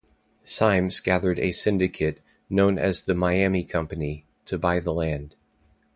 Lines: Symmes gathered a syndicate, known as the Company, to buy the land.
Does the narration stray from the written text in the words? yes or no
yes